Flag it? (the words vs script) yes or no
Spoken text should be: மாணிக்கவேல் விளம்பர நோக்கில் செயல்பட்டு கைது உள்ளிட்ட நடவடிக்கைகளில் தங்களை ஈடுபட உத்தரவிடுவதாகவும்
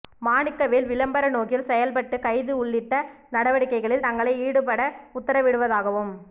no